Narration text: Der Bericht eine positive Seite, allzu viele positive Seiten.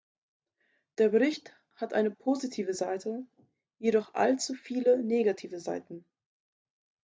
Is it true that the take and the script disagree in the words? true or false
true